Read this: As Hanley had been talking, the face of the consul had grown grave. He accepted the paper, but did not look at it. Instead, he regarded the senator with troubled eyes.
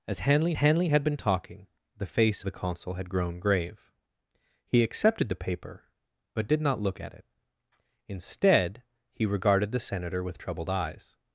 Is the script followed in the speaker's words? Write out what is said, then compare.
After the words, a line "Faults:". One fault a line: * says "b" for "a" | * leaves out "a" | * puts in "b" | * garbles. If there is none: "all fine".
As Hanley Hanley had been talking, the face the consul had grown grave. He accepted the paper, but did not look at it. Instead, he regarded the senator with troubled eyes.
Faults:
* puts in "Hanley"
* leaves out "of"